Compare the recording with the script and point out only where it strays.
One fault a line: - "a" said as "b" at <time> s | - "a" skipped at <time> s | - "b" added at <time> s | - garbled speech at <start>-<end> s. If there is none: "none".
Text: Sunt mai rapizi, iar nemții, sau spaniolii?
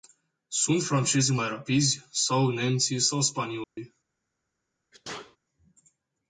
- "francezii" added at 0.8 s
- "iar" said as "sau" at 2.1 s